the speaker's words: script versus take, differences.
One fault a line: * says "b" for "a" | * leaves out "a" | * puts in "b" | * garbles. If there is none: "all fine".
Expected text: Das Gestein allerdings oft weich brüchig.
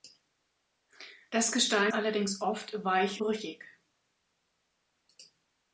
all fine